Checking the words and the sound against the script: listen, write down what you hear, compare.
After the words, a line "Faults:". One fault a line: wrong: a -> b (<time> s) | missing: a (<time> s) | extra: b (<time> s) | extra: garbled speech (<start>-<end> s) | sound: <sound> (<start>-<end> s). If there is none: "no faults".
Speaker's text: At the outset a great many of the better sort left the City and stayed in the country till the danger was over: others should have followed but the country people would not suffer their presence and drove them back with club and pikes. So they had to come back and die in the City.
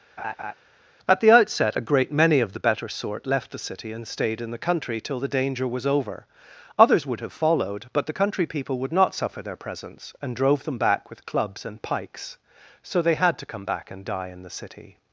At the outset a great many of the better sort left the City and stayed in the country till the danger was over: others would have followed but the country people would not suffer their presence and drove them back with clubs and pikes. So they had to come back and die in the City.
Faults:
sound: laugh (0.2-0.5 s)
wrong: should -> would (7.1 s)
wrong: club -> clubs (11.2 s)